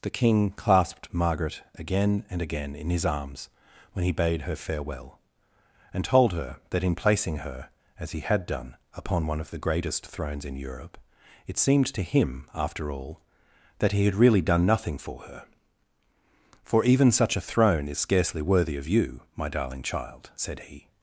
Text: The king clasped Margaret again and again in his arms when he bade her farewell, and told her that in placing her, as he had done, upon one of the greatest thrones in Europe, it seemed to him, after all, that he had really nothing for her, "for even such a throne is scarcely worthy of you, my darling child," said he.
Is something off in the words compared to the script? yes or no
yes